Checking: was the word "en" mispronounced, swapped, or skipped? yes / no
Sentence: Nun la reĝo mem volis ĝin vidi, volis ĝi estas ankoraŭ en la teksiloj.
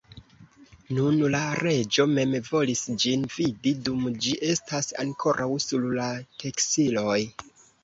yes